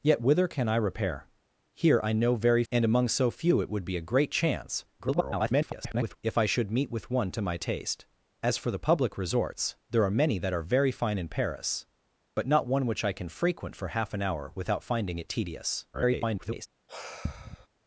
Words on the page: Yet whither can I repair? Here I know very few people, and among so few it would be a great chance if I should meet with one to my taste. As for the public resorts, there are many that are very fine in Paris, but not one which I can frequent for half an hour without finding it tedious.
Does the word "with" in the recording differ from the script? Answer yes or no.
no